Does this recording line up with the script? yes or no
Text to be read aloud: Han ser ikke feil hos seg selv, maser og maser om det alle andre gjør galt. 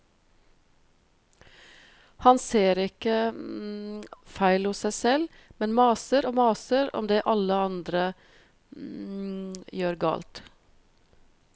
no